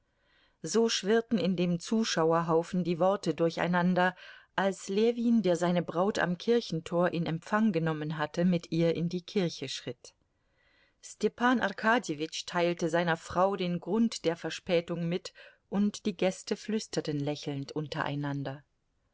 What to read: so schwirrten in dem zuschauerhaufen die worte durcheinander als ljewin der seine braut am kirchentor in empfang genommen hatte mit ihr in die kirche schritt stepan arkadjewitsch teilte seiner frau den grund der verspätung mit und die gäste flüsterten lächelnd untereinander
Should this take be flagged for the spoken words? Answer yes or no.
no